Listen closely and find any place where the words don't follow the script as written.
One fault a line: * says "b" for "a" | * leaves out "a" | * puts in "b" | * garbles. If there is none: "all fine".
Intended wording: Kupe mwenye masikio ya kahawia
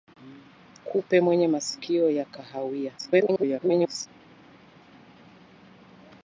* garbles